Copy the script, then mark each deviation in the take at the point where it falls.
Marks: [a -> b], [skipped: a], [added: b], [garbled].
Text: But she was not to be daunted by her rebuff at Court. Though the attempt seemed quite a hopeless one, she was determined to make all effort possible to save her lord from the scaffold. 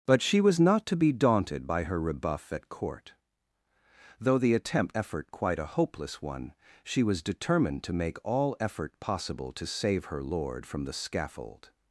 But she was not to be daunted by her rebuff at Court. Though the attempt [seemed -> effort] quite a hopeless one, she was determined to make all effort possible to save her lord from the scaffold.